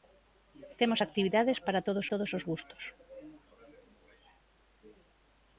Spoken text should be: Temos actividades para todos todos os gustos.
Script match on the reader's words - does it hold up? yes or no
yes